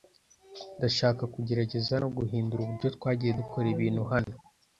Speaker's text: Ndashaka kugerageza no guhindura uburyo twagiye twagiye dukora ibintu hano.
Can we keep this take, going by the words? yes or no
no